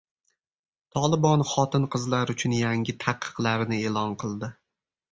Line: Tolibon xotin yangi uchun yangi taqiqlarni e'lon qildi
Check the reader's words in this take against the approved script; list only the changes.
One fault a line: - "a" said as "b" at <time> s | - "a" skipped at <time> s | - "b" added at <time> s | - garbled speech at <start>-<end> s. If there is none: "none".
- "yangi" said as "qizlar" at 2.0 s